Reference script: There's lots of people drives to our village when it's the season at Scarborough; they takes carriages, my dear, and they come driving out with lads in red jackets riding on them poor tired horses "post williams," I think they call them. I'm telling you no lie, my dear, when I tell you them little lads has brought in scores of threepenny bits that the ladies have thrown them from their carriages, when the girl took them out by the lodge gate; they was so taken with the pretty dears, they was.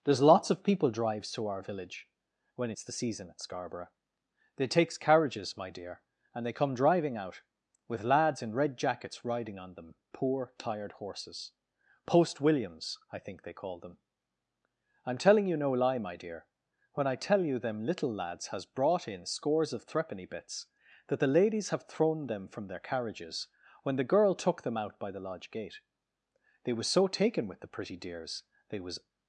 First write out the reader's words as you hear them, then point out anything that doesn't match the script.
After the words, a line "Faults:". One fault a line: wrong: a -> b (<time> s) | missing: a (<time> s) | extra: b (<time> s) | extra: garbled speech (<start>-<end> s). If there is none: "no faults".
There's lots of people drives to our village when it's the season at Scarborough; they takes carriages, my dear, and they come driving out with lads in red jackets riding on them poor tired horses "post williams," I think they call them. I'm telling you no lie, my dear, when I tell you them little lads has brought in scores of threepenny bits that the ladies have thrown them from their carriages, when the girl took them out by the lodge gate; they was so taken with the pretty dears, they was.
Faults:
no faults